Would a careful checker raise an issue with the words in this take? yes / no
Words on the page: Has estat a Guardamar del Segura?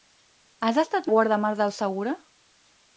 no